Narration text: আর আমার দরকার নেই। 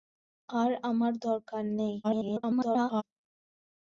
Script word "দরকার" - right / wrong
right